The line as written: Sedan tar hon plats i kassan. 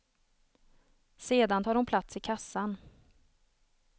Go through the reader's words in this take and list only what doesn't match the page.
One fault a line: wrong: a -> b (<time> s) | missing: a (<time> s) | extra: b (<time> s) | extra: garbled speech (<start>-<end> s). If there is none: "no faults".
no faults